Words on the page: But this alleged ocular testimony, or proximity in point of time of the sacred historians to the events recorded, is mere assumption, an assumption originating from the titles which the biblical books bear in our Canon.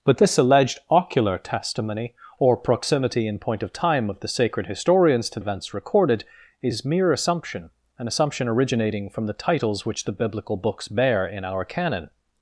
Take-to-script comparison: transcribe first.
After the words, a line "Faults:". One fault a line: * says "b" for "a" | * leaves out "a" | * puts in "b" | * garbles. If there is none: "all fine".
But this alleged ocular testimony, or proximity in point of time of the sacred historians to events recorded, is mere assumption, an assumption originating from the titles which the biblical books bear in our Canon.
Faults:
* leaves out "the"